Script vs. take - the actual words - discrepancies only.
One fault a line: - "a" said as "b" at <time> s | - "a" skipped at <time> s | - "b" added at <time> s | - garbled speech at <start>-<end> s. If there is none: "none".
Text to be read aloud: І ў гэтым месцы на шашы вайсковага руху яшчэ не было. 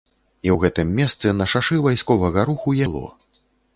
- "яшчэ не" skipped at 2.8 s